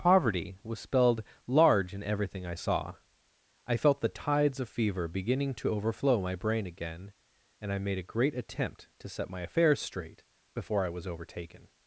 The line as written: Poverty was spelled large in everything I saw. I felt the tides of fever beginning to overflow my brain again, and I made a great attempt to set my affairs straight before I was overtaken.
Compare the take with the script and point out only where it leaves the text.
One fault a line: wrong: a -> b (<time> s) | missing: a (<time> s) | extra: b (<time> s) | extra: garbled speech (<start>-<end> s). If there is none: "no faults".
no faults